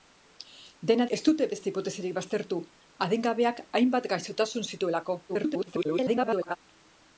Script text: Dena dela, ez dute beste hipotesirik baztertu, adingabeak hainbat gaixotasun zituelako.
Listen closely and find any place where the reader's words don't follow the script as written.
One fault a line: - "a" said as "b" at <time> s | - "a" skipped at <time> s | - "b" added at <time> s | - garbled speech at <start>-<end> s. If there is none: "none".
- "dela" skipped at 1.1 s
- garbled speech at 5.3-6.6 s